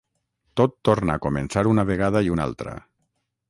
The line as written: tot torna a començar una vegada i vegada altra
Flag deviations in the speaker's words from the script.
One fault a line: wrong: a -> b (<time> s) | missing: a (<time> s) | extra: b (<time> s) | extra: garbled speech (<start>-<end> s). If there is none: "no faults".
wrong: vegada -> una (2.3 s)